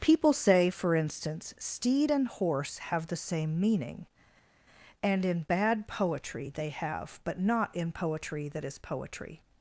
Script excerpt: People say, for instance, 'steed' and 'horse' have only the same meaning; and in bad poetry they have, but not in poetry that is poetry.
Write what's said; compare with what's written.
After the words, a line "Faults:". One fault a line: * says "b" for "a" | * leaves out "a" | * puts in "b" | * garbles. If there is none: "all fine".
People say, for instance, 'steed' and 'horse' have the same meaning; and in bad poetry they have, but not in poetry that is poetry.
Faults:
* leaves out "only"